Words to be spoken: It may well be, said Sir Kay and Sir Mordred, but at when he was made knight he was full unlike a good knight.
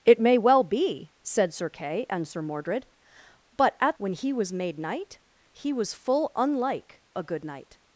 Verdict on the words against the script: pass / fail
pass